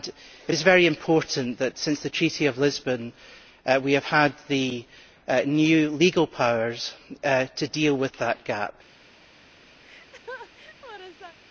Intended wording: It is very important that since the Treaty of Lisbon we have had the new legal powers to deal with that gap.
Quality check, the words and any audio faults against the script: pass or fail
fail